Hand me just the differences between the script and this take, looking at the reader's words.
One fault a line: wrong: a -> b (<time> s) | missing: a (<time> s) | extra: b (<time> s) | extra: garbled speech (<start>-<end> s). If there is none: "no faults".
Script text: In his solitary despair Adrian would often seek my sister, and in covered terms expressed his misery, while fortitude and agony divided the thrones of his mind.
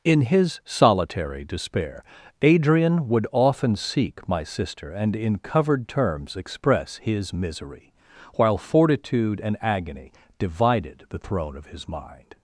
wrong: expressed -> express (6.3 s)
wrong: thrones -> throne (11.2 s)